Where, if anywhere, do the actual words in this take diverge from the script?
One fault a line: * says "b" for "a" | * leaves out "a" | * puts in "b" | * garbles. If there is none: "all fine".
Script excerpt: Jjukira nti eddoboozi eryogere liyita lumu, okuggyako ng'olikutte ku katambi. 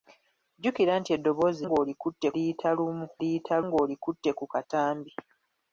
* says "ng'olikutte" for "eryogere"
* says "liyita" for "okuggyako"